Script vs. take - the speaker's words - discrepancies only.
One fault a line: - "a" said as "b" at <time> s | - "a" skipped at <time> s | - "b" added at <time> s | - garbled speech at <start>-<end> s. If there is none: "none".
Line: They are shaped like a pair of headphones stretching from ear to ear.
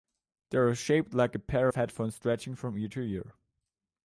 none